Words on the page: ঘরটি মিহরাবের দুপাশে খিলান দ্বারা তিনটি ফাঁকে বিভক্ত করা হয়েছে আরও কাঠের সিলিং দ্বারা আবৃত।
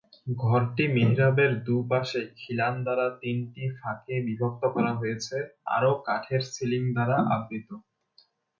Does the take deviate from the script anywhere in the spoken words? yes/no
no